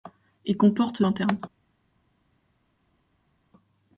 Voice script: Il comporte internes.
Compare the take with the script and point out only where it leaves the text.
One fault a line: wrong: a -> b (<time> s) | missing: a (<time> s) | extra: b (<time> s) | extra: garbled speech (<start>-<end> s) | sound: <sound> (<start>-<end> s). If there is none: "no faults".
no faults